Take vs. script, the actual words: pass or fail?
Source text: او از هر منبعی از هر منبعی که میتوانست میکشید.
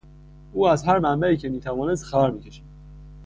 fail